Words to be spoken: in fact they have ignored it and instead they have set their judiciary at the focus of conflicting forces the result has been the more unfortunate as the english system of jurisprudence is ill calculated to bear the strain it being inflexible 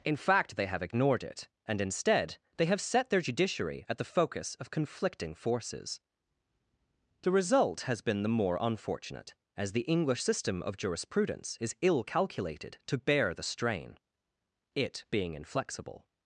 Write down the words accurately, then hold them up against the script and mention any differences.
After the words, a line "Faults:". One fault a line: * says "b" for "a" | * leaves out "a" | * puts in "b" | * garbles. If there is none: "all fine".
in fact they have ignored it and instead they have set their judiciary at the focus of conflicting forces the result has been the more unfortunate as the english system of jurisprudence is ill calculated to bear the strain it being inflexible
Faults:
all fine